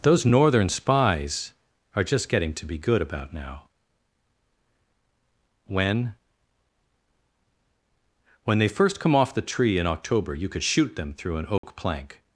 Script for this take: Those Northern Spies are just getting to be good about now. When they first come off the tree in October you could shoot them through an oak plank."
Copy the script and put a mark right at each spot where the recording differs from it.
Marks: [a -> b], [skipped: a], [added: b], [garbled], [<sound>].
Those Northern Spies are just getting to be good about now. When [added: When] they first come off the tree in October you could shoot them through an oak [dropout] plank."